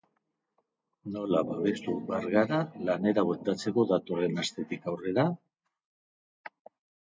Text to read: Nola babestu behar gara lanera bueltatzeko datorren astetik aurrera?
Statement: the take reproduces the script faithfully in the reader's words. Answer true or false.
true